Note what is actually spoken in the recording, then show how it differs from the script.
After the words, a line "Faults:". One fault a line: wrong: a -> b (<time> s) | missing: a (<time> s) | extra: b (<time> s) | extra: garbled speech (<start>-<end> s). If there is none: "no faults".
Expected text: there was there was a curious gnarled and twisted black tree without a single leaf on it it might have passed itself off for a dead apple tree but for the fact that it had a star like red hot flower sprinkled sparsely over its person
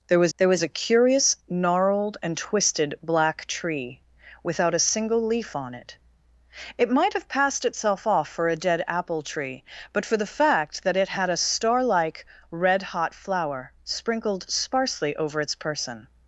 there was there was a curious gnarled and twisted black tree without a single leaf on it it might have passed itself off for a dead apple tree but for the fact that it had a star like red hot flower sprinkled sparsely over its person
Faults:
no faults